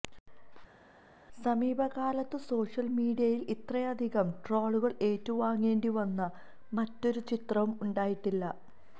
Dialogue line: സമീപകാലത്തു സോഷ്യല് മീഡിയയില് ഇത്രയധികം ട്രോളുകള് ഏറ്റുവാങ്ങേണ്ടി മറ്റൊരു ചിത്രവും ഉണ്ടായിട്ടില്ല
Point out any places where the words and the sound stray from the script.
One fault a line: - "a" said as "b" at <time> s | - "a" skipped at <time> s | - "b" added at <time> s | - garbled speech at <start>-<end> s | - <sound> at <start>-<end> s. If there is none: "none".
- "വന്ന" added at 6.0 s